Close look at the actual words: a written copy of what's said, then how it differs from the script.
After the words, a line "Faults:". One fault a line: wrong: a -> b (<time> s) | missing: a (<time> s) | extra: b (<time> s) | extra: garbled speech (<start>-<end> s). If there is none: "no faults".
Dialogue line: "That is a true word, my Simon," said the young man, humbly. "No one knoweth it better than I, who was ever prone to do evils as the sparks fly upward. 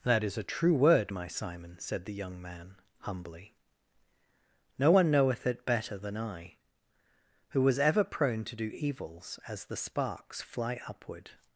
"That is a true word, my Simon," said the young man, humbly. "No one knoweth it better than I, who was ever prone to do evils as the sparks fly upward.
Faults:
no faults